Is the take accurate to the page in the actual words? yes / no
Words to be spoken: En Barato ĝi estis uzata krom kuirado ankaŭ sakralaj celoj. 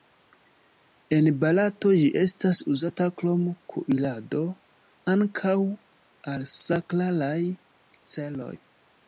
no